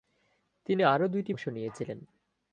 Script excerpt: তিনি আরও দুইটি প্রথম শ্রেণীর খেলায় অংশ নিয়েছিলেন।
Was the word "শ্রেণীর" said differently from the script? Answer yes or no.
yes